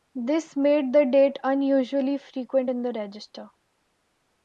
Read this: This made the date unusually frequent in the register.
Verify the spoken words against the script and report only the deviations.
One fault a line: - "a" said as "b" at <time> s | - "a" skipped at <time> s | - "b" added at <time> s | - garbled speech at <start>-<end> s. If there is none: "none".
none